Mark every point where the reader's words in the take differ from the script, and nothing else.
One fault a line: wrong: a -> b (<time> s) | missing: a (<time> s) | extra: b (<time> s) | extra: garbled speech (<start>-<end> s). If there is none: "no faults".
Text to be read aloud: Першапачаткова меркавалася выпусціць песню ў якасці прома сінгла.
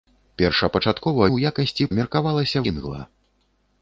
missing: меркавалася выпусціць песню (1.3 s)
wrong: прома -> меркавалася (2.0 s)